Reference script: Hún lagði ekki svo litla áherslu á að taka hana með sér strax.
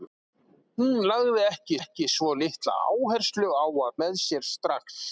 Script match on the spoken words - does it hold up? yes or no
no